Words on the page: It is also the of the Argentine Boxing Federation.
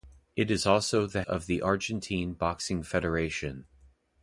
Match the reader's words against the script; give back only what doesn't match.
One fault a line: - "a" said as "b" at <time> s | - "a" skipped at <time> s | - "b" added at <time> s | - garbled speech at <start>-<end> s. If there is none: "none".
none